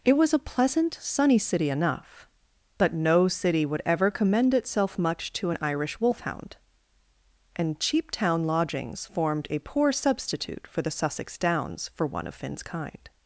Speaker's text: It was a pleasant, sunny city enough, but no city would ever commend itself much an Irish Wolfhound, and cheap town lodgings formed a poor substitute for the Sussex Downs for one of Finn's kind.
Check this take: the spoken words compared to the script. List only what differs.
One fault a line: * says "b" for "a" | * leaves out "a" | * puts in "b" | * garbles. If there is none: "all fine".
* puts in "to"